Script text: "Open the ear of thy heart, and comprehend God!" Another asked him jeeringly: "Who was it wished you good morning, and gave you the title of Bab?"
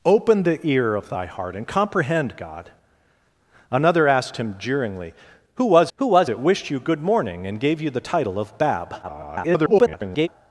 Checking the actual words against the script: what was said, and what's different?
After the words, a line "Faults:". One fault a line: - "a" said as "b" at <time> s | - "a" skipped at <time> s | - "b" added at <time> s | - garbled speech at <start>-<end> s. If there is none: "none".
"Open the ear of thy heart, and comprehend God!" Another asked him jeeringly: "Who was who was it wished you good morning, and gave you the title of Bab?" [garbled]
Faults:
- "who was" added at 6.0 s
- garbled speech at 9.0-10.3 s